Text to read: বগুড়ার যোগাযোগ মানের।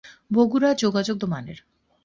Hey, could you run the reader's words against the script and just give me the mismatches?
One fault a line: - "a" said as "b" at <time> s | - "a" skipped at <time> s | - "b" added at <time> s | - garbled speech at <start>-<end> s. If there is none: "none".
none